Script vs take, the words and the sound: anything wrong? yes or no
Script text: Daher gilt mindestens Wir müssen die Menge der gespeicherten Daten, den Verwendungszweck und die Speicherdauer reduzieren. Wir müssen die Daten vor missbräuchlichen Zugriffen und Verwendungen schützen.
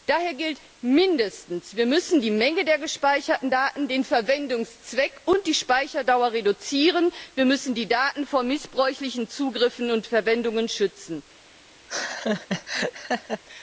yes